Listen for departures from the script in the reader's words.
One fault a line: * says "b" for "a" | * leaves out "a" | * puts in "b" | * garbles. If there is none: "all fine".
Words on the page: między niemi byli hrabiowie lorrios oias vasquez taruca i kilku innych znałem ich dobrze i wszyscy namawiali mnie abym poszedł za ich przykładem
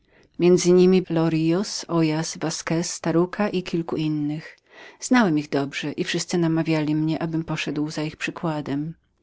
* leaves out "byli hrabiowie"